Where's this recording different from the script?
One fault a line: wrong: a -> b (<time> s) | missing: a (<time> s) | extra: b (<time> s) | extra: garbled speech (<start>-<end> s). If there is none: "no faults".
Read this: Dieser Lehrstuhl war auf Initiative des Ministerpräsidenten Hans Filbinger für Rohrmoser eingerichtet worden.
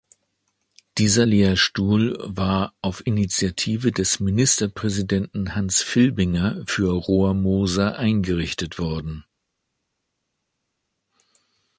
no faults